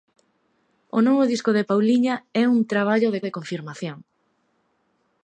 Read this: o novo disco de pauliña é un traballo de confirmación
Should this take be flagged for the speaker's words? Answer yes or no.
yes